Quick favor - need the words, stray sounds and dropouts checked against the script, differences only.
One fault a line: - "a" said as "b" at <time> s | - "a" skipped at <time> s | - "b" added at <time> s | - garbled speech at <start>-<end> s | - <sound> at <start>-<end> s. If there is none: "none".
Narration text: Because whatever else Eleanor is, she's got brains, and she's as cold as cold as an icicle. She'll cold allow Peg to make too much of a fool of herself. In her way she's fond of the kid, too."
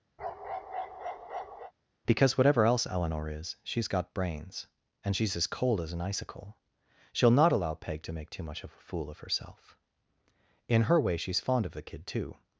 - bark at 0.2-1.7 s
- "cold as" skipped at 5.9 s
- "cold" said as "not" at 7.3 s